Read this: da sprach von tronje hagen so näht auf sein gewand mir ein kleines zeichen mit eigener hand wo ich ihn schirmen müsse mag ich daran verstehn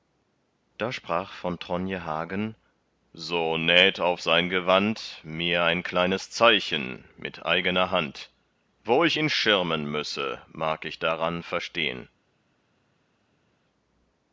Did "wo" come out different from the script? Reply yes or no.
no